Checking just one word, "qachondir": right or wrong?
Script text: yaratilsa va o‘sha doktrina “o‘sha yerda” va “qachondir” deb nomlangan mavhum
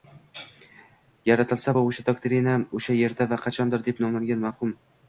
right